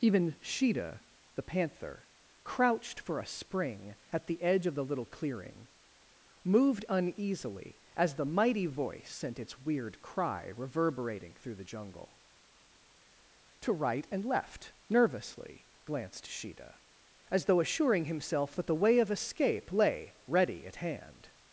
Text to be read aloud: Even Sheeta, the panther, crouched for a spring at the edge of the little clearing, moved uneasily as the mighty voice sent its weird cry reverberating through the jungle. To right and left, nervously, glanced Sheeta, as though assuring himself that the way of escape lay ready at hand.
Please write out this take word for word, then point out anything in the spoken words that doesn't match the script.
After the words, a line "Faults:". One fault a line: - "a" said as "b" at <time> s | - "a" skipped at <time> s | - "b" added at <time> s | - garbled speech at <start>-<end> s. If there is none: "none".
Even Sheeta, the panther, crouched for a spring at the edge of the little clearing, moved uneasily as the mighty voice sent its weird cry reverberating through the jungle. To right and left, nervously, glanced Sheeta, as though assuring himself that the way of escape lay ready at hand.
Faults:
none